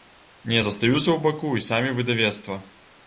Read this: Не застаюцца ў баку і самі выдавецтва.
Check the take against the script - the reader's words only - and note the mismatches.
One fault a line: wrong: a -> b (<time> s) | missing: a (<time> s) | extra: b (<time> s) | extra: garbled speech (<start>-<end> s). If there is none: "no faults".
no faults